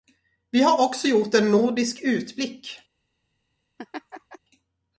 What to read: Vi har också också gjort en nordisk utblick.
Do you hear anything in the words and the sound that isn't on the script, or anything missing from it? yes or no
yes